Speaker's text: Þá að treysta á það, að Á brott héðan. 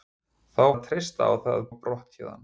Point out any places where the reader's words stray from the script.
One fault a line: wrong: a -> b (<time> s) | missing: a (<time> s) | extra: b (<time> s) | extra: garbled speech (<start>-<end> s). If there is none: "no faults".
no faults